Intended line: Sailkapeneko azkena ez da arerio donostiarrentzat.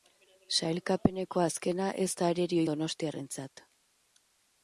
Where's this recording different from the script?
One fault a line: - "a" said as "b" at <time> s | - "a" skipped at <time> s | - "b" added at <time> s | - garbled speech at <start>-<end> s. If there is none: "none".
none